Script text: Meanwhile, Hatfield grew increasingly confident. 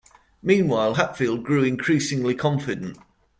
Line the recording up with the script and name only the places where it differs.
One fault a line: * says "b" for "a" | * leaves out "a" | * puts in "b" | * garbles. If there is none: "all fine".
all fine